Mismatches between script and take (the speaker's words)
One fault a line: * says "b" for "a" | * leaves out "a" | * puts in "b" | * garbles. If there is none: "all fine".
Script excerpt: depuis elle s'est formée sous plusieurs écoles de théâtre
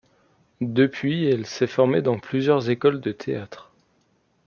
* says "dans" for "sous"